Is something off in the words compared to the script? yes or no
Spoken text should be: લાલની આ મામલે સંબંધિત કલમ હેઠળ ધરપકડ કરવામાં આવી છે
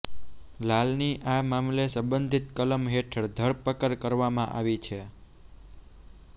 no